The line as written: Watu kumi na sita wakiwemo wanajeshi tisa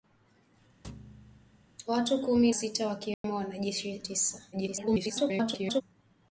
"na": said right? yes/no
no